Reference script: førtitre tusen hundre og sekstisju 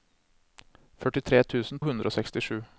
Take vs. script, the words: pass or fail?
pass